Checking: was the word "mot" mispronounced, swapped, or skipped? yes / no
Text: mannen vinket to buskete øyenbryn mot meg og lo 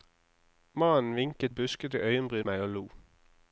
yes